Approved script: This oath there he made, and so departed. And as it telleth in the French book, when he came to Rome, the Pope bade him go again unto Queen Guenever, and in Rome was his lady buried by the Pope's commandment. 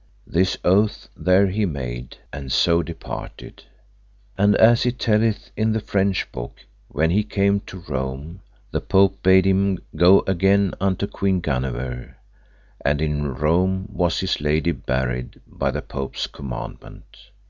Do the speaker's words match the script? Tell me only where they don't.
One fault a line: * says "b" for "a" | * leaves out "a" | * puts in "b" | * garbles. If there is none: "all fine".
all fine